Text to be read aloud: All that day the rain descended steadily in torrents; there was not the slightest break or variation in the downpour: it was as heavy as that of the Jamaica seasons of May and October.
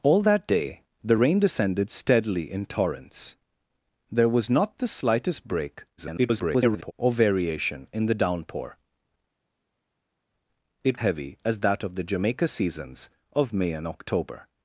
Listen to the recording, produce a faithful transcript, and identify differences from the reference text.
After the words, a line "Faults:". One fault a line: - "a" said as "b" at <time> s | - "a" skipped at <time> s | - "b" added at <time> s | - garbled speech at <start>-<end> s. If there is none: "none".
All that day the rain descended steadily in torrents; there was not the slightest break [garbled] or variation in the downpour: it heavy as that of the Jamaica seasons of May and October.
Faults:
- garbled speech at 6.0-6.9 s
- "was as" skipped at 11.0 s